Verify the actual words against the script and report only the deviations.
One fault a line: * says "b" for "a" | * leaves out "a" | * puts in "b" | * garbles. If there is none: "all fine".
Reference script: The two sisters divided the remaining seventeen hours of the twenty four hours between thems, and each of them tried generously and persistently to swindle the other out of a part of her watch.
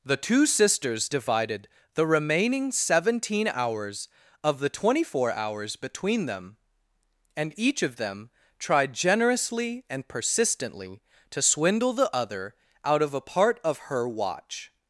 * says "them" for "thems"